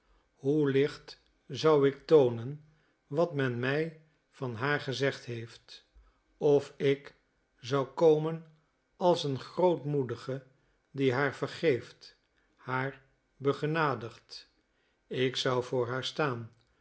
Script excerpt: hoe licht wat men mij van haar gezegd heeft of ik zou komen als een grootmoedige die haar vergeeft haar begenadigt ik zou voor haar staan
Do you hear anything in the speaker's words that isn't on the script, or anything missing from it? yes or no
yes